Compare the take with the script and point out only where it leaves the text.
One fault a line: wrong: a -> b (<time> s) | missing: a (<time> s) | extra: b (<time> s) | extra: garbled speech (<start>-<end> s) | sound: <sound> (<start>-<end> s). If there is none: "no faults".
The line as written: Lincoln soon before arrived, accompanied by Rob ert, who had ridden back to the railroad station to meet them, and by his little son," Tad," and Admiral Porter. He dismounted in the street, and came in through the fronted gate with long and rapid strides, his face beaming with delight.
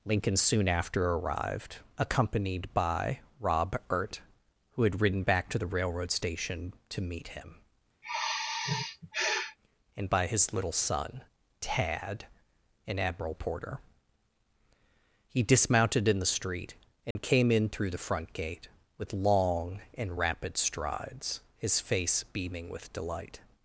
wrong: before -> after (0.7 s)
wrong: them -> him (7.3 s)
sound: sigh (8.0-9.6 s)
sound: dropout (17.1-17.2 s)
wrong: fronted -> front (18.0 s)